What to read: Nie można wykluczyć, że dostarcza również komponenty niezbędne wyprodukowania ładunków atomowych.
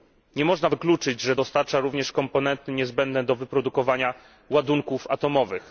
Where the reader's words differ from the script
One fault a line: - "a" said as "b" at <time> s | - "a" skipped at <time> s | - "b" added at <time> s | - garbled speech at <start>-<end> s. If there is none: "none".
- "do" added at 3.2 s